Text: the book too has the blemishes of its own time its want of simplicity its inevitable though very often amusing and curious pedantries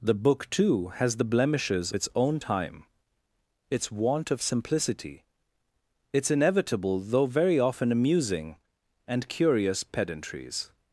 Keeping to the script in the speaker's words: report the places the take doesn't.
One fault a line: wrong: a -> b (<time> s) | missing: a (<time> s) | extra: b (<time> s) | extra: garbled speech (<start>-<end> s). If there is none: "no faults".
missing: of (1.9 s)